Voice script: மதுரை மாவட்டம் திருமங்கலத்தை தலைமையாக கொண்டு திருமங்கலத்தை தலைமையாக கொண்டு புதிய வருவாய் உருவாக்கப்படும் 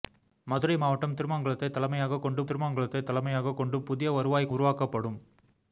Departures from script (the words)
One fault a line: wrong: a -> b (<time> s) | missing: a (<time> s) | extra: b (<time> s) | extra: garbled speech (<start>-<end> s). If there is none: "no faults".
no faults